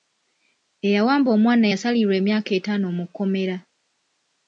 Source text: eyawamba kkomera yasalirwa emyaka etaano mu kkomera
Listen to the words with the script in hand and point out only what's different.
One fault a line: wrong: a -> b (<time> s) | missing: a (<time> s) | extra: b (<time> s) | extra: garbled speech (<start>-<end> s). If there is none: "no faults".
wrong: kkomera -> omwana (1.4 s)